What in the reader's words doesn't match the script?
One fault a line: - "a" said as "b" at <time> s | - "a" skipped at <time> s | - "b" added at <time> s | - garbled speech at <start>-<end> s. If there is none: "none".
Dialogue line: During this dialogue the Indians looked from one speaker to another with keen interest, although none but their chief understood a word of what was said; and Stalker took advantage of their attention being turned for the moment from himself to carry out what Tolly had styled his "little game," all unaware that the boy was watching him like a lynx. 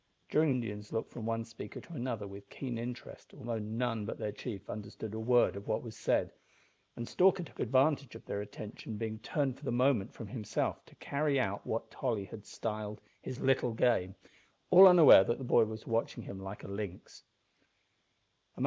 - "this dialogue the" skipped at 0.5 s